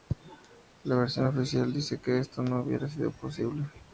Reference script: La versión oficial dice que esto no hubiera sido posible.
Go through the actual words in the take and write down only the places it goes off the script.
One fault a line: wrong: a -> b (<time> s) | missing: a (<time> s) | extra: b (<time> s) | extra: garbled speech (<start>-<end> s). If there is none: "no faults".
no faults